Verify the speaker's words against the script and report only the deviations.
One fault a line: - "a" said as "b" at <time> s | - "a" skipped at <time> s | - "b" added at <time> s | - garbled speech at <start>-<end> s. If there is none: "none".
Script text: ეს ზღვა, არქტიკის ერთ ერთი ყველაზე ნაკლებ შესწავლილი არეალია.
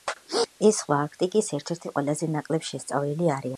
none